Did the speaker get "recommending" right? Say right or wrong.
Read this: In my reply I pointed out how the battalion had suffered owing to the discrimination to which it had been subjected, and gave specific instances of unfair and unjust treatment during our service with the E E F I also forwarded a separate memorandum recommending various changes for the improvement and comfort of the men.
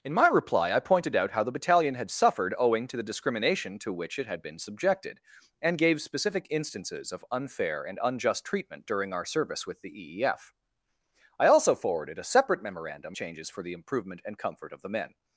wrong